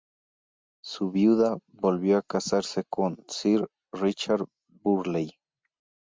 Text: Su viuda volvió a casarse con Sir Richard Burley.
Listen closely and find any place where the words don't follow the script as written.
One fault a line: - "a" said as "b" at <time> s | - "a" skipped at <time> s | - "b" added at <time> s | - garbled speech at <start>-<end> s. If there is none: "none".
none